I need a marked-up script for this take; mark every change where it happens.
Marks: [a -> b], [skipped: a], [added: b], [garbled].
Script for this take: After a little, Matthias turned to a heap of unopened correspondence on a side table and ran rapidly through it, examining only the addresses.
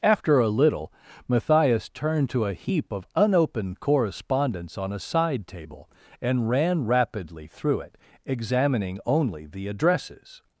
After a little, Matthias turned to a heap of unopened correspondence on a side table and ran rapidly through it, examining only the addresses.